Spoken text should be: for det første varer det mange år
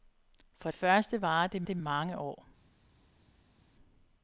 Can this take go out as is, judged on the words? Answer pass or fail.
fail